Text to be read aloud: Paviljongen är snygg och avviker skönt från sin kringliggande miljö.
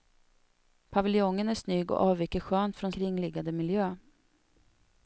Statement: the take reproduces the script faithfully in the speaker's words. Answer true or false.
false